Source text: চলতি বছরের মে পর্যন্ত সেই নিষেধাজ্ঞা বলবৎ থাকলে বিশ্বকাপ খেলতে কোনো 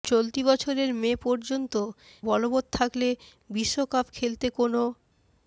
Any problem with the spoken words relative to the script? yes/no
yes